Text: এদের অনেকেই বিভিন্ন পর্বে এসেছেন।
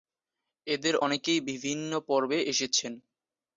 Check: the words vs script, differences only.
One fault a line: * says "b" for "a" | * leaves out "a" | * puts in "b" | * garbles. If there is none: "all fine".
all fine